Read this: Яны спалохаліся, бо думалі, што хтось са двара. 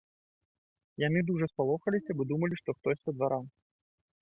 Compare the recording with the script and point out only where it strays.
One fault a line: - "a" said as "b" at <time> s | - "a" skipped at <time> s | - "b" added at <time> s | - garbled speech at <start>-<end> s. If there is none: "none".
- "дужа" added at 1.3 s